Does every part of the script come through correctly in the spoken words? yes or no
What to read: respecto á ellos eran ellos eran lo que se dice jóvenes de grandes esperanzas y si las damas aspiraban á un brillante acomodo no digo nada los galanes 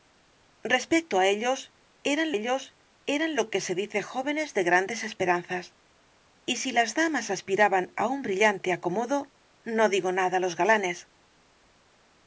yes